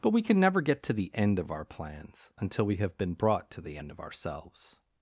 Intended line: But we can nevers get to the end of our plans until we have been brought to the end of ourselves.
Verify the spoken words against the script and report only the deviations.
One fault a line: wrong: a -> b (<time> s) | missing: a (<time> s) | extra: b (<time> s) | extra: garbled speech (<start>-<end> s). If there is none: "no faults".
wrong: nevers -> never (0.4 s)